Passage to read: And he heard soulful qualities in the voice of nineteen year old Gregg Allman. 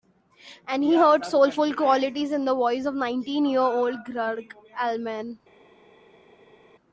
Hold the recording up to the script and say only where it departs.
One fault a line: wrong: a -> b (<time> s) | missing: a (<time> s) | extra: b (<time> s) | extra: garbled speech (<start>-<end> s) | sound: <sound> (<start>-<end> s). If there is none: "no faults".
no faults